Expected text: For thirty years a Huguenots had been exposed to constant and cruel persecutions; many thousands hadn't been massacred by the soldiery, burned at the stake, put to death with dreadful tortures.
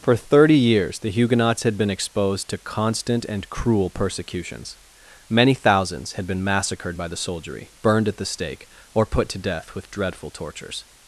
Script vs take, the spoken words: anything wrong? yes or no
yes